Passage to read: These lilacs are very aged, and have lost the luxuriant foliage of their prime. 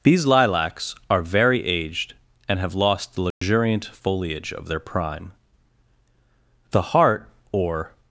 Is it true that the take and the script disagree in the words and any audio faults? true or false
true